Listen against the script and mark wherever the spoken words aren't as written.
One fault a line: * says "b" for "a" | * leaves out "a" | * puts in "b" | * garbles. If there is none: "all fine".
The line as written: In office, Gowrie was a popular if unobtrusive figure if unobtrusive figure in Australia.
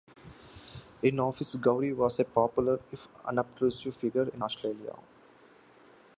* leaves out "if unobtrusive figure"